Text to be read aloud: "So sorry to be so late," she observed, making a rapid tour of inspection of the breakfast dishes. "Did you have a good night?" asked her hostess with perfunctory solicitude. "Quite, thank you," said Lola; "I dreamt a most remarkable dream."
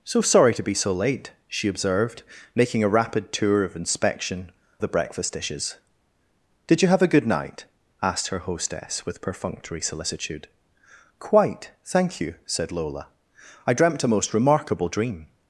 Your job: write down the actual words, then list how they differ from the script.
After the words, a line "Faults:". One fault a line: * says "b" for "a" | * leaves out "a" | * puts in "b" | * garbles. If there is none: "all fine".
"So sorry to be so late," she observed, making a rapid tour of inspection the breakfast dishes. "Did you have a good night?" asked her hostess with perfunctory solicitude. "Quite, thank you," said Lola; "I dreamt a most remarkable dream."
Faults:
* leaves out "of"